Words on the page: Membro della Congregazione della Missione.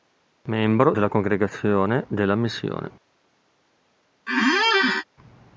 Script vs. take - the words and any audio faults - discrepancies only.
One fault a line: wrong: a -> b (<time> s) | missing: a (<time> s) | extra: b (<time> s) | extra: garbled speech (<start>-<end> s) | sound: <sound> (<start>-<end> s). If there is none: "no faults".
sound: squeak (4.3-5.0 s)